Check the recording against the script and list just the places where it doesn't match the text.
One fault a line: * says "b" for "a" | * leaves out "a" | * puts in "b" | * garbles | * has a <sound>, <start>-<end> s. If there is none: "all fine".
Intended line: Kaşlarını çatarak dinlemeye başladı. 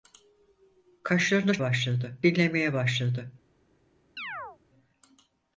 * says "başladı" for "çatarak"
* has a chirp, 4.2-4.6 s